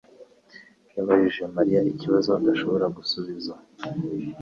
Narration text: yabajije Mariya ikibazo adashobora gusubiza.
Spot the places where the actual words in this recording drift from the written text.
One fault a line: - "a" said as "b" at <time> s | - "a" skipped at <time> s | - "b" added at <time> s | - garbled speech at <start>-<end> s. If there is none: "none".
none